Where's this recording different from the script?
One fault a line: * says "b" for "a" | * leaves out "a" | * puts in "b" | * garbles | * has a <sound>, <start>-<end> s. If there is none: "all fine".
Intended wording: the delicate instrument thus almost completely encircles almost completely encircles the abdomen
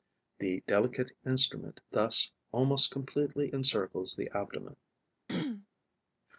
* leaves out "almost completely encircles"
* has a throat clearing, 5.3-5.7 s